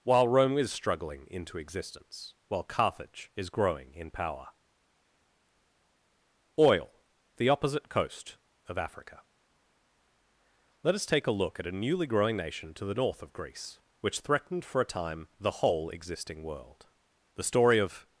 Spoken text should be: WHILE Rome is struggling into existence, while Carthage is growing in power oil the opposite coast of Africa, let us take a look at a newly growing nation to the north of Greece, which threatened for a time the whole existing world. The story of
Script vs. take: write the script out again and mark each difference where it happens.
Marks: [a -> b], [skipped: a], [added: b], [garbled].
WHILE Rome is struggling into existence, while Carthage is growing in power oil the opposite coast of Africa, let us take a look at a newly growing nation to the north of Greece, which threatened for a time the whole existing world. The story of